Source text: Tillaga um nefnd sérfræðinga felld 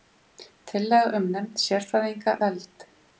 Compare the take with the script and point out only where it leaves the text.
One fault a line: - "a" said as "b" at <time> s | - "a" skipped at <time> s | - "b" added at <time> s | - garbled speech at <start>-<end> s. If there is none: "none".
none